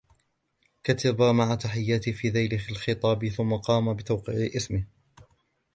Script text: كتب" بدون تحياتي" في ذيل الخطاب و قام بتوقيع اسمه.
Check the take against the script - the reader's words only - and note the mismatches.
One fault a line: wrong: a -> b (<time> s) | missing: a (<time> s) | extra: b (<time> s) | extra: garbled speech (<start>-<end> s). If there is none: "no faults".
wrong: بدون -> مع (1.2 s)
wrong: و -> ثم (3.3 s)